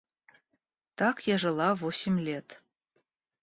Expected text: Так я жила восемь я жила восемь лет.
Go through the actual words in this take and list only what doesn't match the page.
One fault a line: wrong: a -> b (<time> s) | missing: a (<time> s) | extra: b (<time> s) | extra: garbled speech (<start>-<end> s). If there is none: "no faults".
missing: я жила восемь (2.2 s)